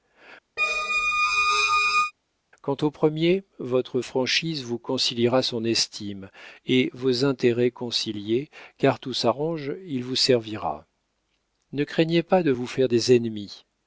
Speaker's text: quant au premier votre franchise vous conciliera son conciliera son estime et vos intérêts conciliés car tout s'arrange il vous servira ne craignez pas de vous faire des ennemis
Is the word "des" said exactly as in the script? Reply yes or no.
yes